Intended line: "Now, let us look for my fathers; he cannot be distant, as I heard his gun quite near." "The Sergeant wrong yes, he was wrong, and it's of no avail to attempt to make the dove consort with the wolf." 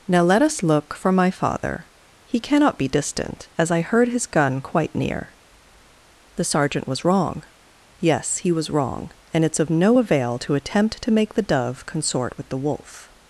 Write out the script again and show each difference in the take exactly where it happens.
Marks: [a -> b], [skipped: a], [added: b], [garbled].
"Now, let us look for my [fathers; -> father] he cannot be distant, as I heard his gun quite near." "The Sergeant [added: was] wrong yes, he was wrong, and it's of no avail to attempt to make the dove consort with the wolf."